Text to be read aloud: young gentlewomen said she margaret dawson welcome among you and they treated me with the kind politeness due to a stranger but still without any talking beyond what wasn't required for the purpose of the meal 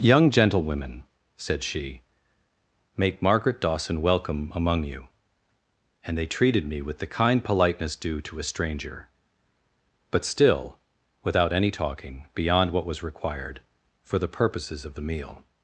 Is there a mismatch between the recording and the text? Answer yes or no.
yes